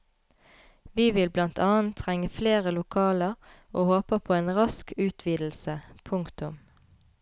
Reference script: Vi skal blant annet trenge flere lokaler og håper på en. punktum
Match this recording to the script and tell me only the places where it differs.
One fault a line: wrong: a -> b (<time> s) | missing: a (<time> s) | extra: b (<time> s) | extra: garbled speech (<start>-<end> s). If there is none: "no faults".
wrong: skal -> vil (1.2 s)
extra: rask utvidelse (4.6 s)